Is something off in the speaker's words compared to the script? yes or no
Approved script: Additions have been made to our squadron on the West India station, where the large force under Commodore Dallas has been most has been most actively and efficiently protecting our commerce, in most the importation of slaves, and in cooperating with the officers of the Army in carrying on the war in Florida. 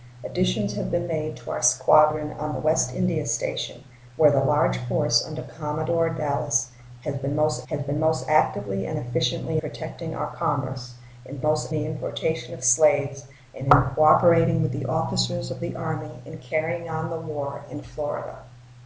no